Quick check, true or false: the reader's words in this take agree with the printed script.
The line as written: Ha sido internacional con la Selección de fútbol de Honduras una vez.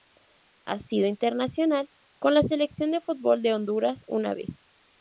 true